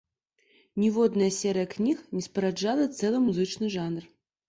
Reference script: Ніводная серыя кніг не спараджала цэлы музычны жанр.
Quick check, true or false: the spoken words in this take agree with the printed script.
true